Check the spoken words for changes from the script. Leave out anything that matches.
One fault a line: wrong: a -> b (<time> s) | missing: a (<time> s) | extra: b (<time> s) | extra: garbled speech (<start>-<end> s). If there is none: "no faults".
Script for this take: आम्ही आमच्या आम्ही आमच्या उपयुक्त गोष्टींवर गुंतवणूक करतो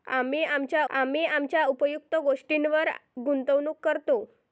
no faults